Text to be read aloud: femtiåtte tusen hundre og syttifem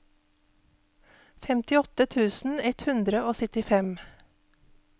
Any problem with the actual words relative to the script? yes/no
yes